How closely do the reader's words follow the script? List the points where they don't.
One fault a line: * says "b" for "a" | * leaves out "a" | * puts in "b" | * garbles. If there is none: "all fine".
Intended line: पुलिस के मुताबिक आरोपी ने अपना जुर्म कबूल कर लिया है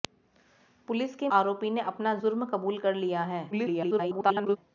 * leaves out "मुताबिक"
* garbles